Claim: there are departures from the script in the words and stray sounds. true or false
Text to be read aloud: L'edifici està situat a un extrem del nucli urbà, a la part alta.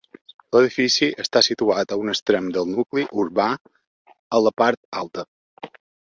false